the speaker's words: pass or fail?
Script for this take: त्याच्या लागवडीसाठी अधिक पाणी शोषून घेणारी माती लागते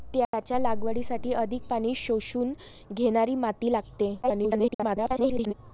fail